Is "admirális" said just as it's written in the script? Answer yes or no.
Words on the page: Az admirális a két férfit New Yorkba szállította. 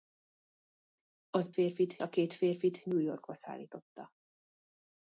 no